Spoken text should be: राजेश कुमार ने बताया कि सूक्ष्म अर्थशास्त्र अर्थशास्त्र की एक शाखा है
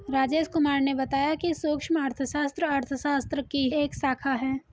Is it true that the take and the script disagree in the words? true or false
false